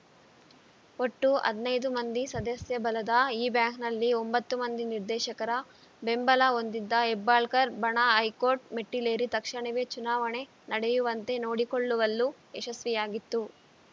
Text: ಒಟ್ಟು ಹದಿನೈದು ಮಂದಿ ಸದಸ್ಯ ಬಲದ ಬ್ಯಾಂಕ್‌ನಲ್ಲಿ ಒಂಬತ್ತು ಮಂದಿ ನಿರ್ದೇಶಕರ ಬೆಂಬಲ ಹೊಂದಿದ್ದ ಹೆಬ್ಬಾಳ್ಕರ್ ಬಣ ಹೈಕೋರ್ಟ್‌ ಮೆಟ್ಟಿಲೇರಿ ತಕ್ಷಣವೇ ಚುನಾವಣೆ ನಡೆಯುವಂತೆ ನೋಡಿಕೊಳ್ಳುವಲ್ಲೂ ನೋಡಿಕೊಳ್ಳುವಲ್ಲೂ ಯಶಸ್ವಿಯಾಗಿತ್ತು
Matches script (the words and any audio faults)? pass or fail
fail